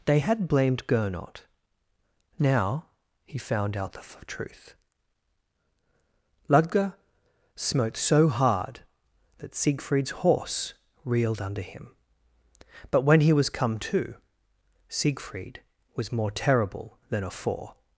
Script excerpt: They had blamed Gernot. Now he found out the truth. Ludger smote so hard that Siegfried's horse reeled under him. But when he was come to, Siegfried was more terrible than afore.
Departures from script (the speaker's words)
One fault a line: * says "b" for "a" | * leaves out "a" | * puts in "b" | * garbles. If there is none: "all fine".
* puts in "f"